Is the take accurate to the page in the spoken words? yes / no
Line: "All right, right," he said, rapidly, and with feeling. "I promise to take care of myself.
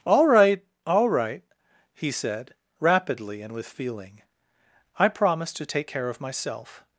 no